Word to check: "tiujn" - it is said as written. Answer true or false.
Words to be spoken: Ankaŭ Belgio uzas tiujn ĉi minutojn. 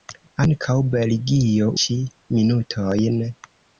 false